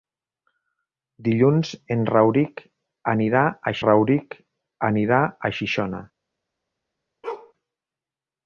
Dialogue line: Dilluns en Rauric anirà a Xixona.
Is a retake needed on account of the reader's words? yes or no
yes